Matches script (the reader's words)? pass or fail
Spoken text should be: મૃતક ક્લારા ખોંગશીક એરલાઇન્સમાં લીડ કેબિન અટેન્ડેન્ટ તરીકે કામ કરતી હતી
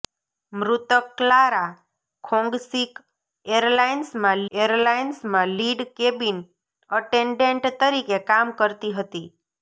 fail